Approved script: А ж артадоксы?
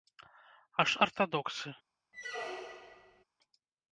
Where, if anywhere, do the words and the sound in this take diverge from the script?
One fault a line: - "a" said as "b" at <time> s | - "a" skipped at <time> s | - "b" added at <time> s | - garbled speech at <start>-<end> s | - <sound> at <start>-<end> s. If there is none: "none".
- squeak at 2.1-3.2 s